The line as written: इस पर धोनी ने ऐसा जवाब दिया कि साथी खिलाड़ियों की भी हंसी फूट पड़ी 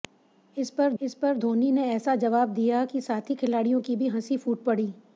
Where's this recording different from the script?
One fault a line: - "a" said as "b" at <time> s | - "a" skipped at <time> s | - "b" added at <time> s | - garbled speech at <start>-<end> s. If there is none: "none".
- "इस पर" added at 1.0 s